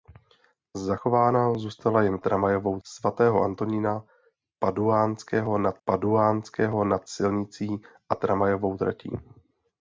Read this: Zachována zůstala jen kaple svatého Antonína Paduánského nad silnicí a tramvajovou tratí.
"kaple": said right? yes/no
no